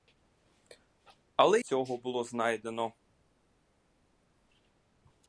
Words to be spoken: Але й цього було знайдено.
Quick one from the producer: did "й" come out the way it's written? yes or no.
no